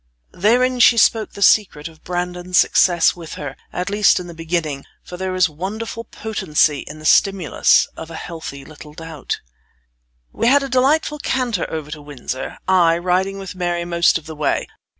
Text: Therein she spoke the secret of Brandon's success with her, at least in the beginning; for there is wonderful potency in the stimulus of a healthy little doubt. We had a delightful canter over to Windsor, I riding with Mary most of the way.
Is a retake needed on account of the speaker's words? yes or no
no